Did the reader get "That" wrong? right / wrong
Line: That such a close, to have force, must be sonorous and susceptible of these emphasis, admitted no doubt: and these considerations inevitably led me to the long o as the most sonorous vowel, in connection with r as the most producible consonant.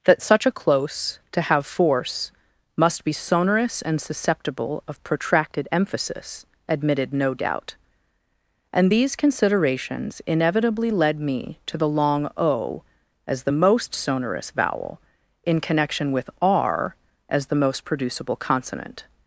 right